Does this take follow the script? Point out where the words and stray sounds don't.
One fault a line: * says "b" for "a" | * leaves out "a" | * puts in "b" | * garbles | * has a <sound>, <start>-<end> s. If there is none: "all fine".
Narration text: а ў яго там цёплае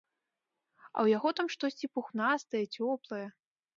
* puts in "штосьці пухнастае"